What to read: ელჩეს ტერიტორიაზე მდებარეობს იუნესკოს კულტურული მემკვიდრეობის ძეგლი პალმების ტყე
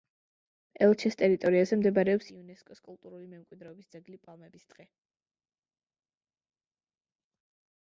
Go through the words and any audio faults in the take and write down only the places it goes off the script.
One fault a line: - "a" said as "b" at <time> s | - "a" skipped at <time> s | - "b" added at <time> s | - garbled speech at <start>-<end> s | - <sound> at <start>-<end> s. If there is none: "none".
none